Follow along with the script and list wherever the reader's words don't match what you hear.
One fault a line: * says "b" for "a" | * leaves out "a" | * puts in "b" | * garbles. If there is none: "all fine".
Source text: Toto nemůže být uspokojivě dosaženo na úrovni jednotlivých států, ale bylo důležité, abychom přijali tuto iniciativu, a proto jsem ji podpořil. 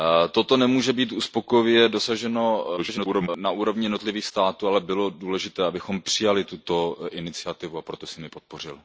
* garbles